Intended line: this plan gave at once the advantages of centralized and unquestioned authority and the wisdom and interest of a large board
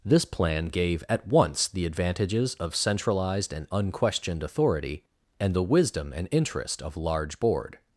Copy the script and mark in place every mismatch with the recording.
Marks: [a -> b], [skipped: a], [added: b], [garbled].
this plan gave at once the advantages of centralized and unquestioned authority and the wisdom and interest of [skipped: a] large board